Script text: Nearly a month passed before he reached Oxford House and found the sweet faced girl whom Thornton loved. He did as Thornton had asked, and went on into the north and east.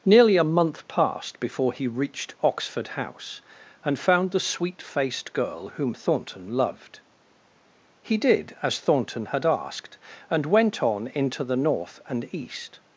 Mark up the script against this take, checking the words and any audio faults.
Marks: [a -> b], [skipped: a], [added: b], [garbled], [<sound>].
Nearly a month passed before he reached Oxford House and found the sweet faced girl whom Thornton loved. He did as Thornton had asked, and went on into the north and east.